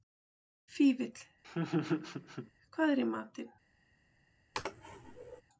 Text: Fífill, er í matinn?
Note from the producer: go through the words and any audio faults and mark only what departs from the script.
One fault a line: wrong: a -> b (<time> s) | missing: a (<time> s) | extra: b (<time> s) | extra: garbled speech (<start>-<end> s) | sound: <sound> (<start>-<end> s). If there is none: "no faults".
sound: laugh (1.4-2.5 s)
extra: hvað (2.8 s)
sound: sneeze (4.5-5.4 s)